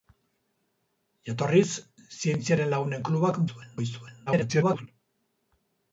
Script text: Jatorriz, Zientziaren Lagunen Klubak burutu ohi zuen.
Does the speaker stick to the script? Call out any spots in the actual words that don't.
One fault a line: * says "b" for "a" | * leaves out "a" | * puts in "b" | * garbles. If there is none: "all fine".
* says "zuen" for "burutu"
* garbles